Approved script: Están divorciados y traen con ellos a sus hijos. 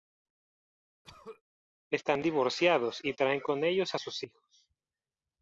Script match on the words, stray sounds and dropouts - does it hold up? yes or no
no